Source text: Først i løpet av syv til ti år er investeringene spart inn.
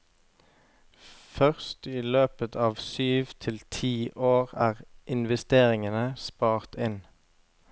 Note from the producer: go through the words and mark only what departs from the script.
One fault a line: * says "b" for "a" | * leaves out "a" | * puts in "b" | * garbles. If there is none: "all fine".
all fine